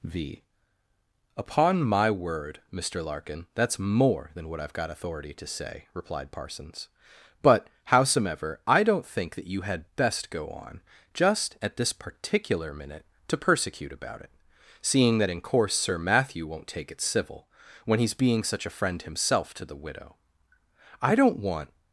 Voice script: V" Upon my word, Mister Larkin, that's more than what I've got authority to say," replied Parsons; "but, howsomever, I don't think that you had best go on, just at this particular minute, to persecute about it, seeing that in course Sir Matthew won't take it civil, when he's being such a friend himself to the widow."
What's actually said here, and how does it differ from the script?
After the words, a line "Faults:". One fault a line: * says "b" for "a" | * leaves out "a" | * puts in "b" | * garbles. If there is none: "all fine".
V" Upon my word, Mister Larkin, that's more than what I've got authority to say," replied Parsons; "but, howsomever, I don't think that you had best go on, just at this particular minute, to persecute about it, seeing that in course Sir Matthew won't take it civil, when he's being such a friend himself to the widow." "I don't want
Faults:
* puts in "I don't want"